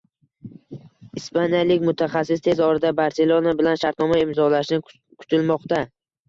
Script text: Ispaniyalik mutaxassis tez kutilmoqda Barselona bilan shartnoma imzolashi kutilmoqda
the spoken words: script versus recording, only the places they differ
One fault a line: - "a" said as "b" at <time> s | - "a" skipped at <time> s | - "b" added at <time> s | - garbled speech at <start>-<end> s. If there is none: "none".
- "kutilmoqda" said as "orada" at 2.7 s